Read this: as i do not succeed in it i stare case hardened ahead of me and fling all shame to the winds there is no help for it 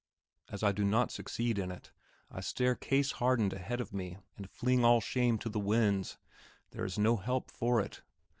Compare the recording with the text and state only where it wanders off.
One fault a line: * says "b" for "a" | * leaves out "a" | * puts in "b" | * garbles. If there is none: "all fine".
all fine